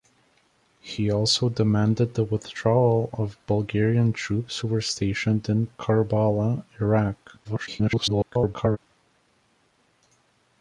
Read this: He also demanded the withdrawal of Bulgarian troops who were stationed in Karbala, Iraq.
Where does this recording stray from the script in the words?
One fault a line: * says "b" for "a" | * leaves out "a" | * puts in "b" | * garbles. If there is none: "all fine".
* garbles